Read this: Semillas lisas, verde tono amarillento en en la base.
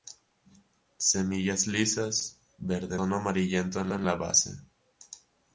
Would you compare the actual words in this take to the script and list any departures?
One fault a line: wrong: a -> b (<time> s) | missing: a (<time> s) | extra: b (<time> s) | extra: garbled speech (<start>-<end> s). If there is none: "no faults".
no faults